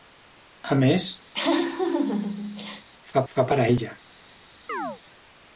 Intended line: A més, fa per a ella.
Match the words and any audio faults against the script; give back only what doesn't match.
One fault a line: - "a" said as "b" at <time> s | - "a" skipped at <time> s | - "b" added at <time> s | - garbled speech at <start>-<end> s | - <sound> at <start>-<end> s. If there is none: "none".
- laugh at 1.3-2.9 s
- "fa" added at 3.3 s
- chirp at 4.7-5.0 s